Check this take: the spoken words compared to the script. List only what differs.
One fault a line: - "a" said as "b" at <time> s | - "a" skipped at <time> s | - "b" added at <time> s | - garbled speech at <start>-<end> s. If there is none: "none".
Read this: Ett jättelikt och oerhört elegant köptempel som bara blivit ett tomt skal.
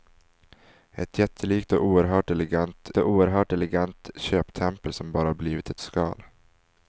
- "och oerhört elegant" added at 3.0 s
- "tomt" skipped at 5.8 s